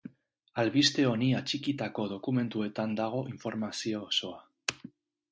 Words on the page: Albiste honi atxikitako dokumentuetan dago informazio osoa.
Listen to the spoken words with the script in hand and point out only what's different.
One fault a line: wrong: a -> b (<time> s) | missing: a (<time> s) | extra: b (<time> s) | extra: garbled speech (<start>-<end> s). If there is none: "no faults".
no faults